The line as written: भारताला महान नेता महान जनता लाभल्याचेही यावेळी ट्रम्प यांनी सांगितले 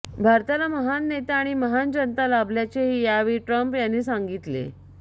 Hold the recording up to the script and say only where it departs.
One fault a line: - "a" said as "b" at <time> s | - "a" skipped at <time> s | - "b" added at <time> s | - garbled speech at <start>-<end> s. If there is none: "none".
- "आणि" added at 1.4 s